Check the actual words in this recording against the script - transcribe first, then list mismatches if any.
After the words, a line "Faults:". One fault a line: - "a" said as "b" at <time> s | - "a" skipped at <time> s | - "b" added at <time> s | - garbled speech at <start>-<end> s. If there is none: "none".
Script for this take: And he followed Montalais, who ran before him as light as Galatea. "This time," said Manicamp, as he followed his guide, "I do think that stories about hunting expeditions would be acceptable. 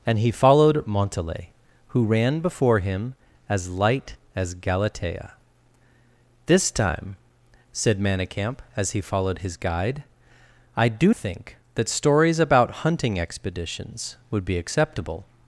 And he followed Montalais, who ran before him as light as Galatea. "This time," said Manicamp, as he followed his guide, "I do think that stories about hunting expeditions would be acceptable.
Faults:
none